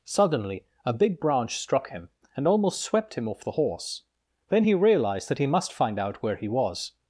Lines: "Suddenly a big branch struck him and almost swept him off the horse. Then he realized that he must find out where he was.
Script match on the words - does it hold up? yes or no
yes